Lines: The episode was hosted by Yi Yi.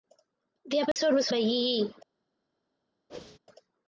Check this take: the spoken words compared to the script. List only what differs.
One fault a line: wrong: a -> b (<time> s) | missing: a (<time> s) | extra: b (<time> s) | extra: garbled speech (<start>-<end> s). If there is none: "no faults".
missing: hosted (1.3 s)